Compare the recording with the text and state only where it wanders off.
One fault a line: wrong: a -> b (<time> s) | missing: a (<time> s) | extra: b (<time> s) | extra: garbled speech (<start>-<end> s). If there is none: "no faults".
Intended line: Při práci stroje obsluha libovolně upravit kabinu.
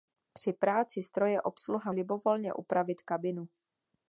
no faults